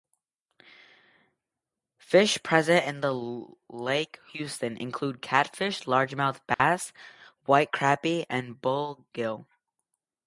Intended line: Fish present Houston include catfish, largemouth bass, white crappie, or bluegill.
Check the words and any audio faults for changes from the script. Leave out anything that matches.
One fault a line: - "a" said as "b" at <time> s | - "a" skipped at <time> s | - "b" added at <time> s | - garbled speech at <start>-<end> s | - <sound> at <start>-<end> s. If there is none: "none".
- "in Lake" added at 2.9 s
- dropout at 6.5-6.6 s
- "or" said as "and" at 8.3 s